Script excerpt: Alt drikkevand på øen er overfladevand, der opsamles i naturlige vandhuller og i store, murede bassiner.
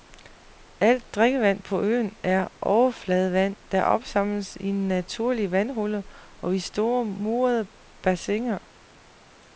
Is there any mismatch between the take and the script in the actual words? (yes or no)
no